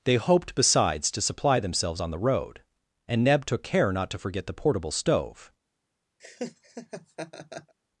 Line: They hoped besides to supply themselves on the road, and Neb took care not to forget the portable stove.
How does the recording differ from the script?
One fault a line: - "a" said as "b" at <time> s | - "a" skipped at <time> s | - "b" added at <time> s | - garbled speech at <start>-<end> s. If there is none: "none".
none